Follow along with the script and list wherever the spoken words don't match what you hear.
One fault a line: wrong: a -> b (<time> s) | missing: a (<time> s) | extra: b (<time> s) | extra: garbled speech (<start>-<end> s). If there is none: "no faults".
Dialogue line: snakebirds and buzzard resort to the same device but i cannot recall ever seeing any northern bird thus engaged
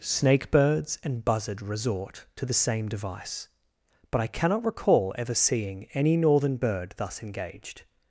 no faults